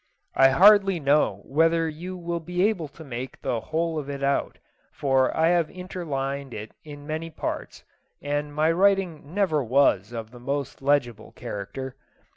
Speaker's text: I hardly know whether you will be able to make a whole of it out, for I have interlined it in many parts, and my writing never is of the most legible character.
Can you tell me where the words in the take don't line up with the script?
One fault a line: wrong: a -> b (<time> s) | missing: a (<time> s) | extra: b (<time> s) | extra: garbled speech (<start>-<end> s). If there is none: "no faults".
wrong: a -> the (3.4 s)
wrong: is -> was (9.6 s)